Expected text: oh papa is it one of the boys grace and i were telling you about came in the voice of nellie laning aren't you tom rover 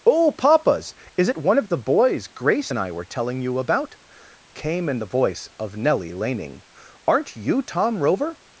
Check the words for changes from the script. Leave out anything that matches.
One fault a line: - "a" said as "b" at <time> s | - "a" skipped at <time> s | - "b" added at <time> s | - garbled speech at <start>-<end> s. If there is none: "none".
- "papa" said as "papas" at 0.3 s